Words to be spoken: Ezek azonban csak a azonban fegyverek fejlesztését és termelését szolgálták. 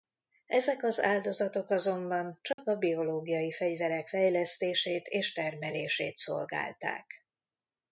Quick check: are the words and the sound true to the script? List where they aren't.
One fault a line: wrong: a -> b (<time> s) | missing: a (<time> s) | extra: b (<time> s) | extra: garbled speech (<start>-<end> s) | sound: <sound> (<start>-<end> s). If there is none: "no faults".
extra: az áldozatok (0.8 s)
sound: dropout (2.5-2.6 s)
wrong: azonban -> biológiai (2.8 s)